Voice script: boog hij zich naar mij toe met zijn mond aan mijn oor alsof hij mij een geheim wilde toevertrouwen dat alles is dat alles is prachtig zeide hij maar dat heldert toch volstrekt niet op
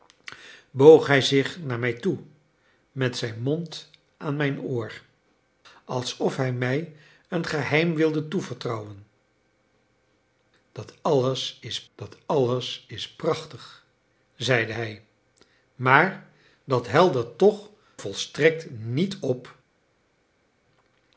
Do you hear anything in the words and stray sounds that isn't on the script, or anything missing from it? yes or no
no